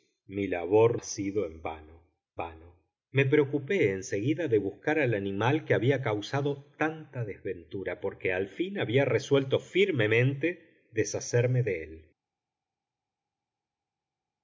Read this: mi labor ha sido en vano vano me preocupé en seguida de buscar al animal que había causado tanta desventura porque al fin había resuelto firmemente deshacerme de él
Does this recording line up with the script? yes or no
yes